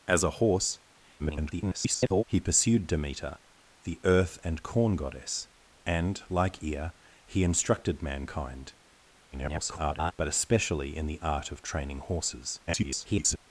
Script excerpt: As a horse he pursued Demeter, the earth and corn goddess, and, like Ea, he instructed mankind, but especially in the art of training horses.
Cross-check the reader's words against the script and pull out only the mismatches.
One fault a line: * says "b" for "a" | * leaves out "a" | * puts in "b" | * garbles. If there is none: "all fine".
* garbles
* garbles
* garbles